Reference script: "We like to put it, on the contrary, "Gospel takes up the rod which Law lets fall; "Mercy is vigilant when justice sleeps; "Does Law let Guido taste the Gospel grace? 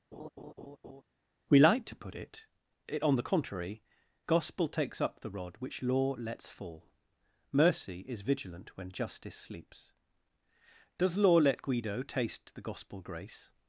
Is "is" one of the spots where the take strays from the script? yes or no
no